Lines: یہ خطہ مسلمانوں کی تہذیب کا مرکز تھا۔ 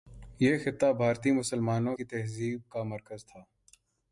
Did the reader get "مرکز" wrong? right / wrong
right